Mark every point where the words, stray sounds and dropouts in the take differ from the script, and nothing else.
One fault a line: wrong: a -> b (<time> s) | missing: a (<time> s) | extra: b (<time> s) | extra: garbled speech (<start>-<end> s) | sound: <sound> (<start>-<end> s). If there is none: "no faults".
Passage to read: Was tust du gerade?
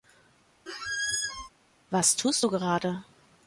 sound: squeak (0.7-1.5 s)